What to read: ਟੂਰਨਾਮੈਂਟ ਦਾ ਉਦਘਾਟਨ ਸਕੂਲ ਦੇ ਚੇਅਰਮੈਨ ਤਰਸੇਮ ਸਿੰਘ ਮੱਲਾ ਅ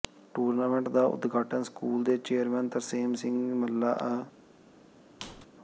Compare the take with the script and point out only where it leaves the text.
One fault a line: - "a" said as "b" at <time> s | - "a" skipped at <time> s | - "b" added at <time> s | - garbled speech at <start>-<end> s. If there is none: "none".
none